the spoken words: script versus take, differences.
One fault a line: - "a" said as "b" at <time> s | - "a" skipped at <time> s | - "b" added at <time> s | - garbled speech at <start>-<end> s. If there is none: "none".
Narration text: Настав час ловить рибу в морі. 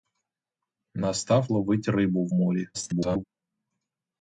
- "час" skipped at 1.5 s
- garbled speech at 2.7-3.2 s